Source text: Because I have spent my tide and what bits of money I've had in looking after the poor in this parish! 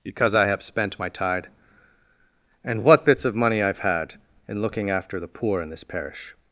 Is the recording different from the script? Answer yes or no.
no